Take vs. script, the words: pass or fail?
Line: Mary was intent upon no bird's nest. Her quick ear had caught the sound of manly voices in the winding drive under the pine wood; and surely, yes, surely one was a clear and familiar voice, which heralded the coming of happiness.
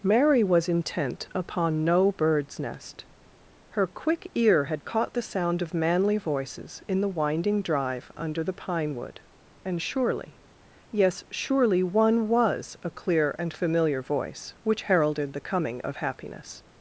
pass